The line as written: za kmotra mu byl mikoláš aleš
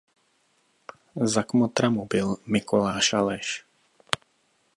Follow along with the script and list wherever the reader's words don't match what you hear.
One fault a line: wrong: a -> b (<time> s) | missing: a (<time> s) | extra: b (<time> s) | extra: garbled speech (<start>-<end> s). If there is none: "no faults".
no faults